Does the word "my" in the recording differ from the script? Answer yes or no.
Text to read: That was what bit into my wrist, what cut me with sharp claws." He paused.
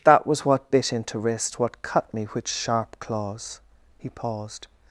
yes